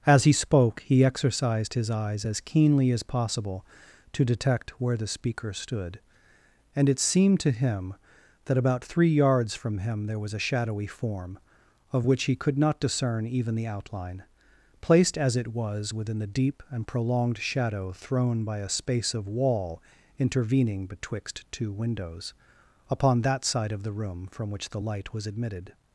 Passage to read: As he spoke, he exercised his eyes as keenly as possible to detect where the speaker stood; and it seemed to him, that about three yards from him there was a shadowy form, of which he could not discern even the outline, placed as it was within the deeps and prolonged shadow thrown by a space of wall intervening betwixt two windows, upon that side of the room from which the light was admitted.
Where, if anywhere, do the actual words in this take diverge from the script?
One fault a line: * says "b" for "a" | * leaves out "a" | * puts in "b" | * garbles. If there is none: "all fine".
* says "deep" for "deeps"